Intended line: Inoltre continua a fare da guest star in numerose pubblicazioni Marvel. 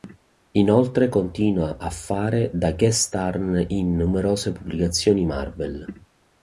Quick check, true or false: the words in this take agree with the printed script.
true